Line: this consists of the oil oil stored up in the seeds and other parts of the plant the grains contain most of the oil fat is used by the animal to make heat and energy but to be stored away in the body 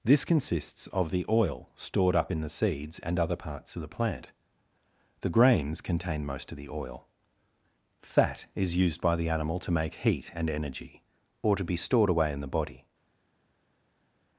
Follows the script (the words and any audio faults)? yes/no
no